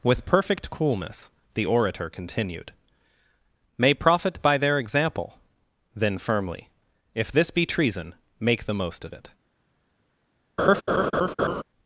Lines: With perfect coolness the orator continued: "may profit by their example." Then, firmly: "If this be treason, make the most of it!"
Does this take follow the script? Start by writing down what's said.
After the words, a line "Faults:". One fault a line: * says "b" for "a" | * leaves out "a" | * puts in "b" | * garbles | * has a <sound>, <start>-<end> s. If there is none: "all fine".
With perfect coolness the orator continued: "may profit by their example." Then, firmly: "If this be treason, make the most of it!"
Faults:
* has a laugh, 10.6-11.6 s